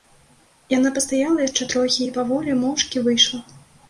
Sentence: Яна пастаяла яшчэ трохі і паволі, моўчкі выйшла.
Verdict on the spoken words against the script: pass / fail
pass